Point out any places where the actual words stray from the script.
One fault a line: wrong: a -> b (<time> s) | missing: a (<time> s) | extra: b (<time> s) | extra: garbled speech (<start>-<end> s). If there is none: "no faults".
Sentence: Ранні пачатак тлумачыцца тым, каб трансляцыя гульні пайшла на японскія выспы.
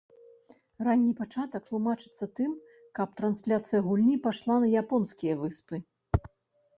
no faults